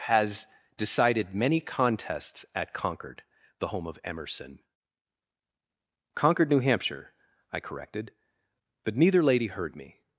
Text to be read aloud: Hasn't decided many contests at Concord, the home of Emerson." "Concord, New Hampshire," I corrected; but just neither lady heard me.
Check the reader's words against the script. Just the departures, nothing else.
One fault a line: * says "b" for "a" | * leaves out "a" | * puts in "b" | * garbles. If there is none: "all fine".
* says "Has" for "Hasn't"
* leaves out "just"